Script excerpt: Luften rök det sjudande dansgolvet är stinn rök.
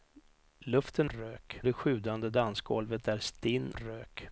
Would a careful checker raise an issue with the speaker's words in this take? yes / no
no